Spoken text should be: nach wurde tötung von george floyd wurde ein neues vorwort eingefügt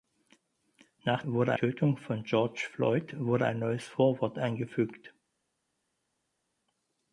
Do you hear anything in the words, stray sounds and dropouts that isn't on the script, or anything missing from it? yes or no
no